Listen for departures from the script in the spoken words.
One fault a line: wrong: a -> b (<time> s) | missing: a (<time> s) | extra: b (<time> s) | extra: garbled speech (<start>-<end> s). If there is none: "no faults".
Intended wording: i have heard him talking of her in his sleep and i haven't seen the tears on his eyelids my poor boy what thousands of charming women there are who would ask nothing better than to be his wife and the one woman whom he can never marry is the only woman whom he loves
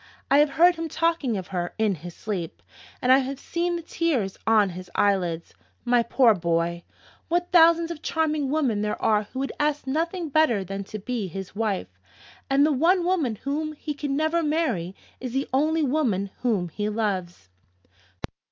wrong: haven't -> have (3.2 s)